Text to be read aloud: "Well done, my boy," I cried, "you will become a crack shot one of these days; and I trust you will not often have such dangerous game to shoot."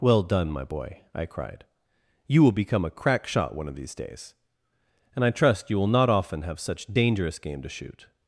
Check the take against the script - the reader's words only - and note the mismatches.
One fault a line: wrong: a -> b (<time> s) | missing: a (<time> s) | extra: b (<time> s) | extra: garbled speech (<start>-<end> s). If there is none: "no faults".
no faults